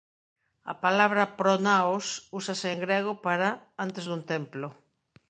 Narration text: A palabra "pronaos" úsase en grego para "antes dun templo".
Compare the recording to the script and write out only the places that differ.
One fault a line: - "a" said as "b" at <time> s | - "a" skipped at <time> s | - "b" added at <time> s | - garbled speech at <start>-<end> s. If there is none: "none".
none